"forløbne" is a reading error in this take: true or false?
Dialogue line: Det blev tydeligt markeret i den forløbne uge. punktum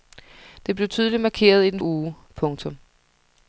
true